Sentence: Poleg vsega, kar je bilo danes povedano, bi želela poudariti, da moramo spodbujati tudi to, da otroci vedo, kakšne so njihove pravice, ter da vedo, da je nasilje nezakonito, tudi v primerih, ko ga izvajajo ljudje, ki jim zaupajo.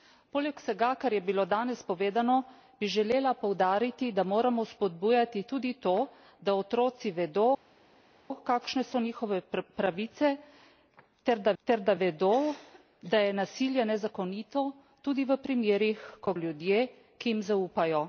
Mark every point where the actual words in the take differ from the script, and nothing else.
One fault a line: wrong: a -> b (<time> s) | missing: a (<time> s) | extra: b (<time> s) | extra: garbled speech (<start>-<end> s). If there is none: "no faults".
extra: ter da (11.6 s)
missing: ga izvajajo (16.3 s)